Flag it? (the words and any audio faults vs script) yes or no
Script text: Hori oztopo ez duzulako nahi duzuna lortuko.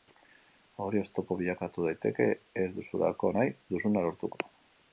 yes